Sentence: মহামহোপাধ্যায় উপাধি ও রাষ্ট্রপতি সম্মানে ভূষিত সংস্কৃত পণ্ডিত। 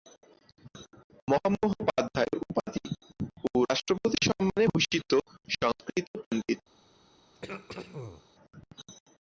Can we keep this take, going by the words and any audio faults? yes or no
no